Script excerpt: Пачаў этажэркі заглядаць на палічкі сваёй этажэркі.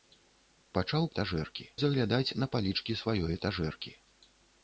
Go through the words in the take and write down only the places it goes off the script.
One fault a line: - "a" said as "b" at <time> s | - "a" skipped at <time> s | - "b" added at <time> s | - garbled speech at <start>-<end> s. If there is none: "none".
none